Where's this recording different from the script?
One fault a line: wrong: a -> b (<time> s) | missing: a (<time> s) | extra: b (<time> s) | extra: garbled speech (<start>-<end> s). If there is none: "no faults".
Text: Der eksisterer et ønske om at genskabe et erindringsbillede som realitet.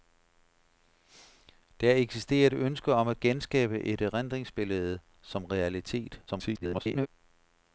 extra: garbled speech (6.3-7.1 s)